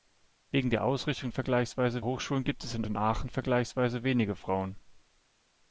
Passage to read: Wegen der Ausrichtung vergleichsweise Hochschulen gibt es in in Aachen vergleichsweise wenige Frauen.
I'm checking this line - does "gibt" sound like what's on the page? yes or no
yes